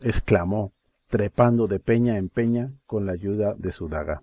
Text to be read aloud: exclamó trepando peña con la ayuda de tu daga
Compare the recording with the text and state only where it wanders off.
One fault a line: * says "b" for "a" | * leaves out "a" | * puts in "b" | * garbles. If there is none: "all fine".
* puts in "de"
* puts in "en peña"
* says "su" for "tu"